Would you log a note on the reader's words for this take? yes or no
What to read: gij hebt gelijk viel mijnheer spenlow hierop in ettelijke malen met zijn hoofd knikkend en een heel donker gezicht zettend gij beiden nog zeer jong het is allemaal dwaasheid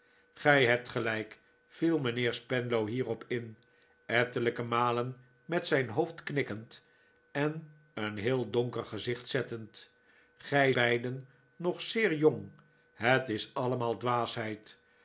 no